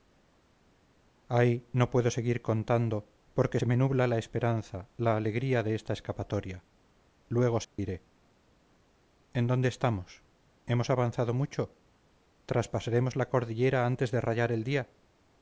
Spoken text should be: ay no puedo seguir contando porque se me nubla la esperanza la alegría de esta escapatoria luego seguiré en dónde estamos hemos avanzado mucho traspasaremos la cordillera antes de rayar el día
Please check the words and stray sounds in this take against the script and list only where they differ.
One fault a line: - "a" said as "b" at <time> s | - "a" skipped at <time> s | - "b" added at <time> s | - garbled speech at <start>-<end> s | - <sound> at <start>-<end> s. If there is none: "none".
- dropout at 7.6-7.8 s